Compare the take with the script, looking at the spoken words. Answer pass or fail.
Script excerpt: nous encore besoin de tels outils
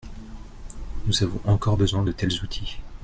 fail